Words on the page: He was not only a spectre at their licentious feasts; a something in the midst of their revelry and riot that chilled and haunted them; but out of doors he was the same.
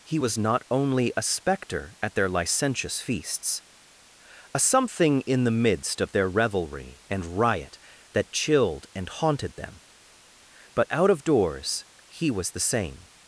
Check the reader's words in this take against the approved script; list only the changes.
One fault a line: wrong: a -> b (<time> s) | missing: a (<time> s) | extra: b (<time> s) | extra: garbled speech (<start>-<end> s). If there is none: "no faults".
no faults